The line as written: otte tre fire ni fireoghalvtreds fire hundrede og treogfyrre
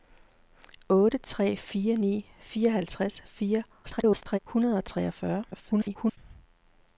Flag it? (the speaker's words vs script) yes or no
yes